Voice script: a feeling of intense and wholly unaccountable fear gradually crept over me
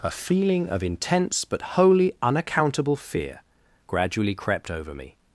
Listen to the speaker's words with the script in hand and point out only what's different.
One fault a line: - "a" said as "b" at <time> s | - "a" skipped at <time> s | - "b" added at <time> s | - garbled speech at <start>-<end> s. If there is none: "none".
- "and" said as "but" at 1.4 s